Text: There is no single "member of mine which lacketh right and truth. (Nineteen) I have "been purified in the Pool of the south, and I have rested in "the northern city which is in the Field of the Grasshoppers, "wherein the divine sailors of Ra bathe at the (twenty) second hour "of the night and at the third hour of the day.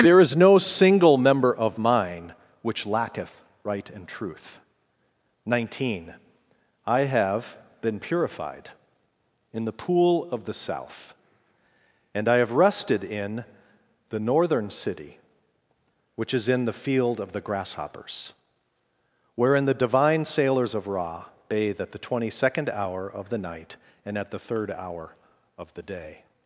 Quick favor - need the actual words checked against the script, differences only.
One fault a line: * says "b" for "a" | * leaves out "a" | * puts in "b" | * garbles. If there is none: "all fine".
all fine